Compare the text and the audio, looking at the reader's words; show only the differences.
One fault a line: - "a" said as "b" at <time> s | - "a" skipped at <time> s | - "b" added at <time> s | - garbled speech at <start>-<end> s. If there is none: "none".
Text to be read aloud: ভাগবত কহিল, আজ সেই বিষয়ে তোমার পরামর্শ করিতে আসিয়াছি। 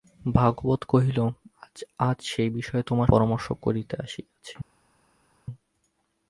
none